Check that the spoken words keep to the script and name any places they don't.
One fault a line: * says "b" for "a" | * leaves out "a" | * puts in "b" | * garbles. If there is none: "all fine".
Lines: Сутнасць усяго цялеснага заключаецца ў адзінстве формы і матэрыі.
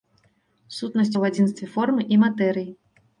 * leaves out "усяго цялеснага заключаецца"